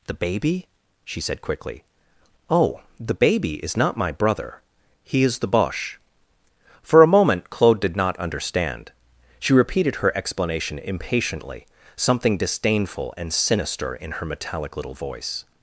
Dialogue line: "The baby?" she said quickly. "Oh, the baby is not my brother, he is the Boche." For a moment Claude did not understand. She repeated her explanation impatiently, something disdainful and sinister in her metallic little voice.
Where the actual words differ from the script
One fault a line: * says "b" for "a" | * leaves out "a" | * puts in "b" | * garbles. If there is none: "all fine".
all fine